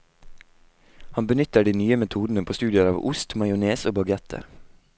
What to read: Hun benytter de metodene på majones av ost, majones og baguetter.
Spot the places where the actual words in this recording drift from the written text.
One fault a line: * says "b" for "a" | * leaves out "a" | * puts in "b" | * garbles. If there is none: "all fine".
* says "Han" for "Hun"
* puts in "nye"
* says "studier" for "majones"